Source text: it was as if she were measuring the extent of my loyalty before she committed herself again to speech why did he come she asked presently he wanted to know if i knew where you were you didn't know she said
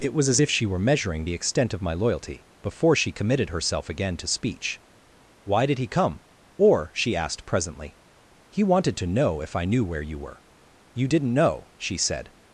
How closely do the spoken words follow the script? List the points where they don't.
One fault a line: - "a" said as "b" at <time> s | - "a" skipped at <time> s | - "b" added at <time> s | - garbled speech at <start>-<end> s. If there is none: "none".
- "or" added at 6.5 s